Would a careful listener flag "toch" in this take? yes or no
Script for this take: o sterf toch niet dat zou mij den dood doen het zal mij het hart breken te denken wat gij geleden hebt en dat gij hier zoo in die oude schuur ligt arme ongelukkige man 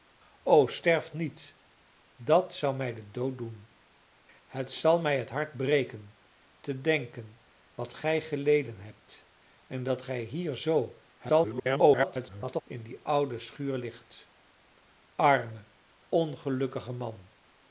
yes